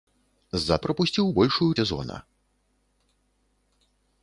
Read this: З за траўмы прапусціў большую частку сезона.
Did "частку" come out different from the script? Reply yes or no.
yes